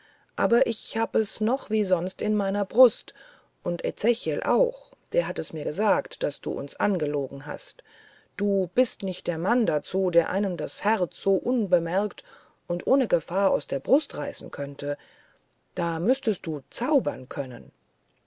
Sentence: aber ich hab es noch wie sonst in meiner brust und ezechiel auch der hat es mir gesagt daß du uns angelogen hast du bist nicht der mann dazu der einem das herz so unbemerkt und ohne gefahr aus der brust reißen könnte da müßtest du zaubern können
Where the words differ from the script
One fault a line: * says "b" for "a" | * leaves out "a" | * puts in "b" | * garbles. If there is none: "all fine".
all fine